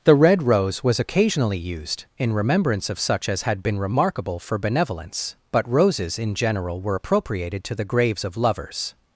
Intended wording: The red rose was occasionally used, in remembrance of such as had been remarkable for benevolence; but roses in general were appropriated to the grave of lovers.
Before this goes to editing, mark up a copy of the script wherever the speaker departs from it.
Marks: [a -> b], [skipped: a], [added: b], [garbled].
The red rose was occasionally used, in remembrance of such as had been remarkable for benevolence; but roses in general were appropriated to the [grave -> graves] of lovers.